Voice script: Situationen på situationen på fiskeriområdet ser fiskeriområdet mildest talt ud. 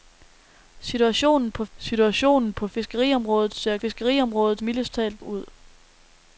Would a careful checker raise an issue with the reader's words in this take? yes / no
no